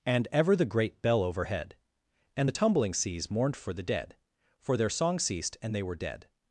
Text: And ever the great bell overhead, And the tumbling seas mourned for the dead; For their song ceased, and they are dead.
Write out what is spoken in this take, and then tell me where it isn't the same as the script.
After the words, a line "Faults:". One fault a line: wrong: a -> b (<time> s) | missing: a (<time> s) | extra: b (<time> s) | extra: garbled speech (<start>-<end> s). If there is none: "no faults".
And ever the great bell overhead, And the tumbling seas mourned for the dead; For their song ceased, and they were dead.
Faults:
wrong: are -> were (5.8 s)